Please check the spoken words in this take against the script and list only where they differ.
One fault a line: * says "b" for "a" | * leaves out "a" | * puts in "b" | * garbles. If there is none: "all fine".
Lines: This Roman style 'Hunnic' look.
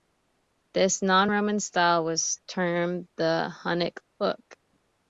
* puts in "non"
* puts in "was termed the"